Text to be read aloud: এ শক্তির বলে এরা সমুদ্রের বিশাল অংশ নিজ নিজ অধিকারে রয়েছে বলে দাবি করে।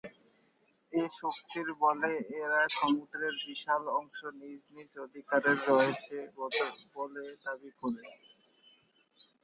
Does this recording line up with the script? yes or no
yes